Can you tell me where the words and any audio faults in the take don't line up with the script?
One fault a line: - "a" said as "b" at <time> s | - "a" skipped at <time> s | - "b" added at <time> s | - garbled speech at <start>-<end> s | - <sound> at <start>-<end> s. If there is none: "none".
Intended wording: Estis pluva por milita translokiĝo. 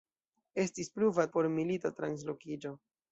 none